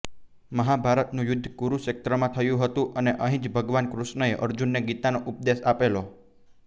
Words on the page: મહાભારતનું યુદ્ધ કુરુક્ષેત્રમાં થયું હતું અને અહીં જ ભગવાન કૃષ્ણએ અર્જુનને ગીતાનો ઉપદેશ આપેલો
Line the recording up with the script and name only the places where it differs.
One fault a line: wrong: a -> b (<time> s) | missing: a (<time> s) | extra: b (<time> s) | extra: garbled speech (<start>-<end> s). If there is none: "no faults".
no faults